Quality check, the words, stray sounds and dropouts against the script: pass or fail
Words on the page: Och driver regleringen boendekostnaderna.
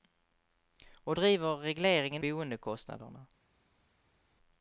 pass